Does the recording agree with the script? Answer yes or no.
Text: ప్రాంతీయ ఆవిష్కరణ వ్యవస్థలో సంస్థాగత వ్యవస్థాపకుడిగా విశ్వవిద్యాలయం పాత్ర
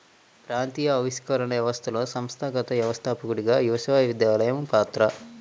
yes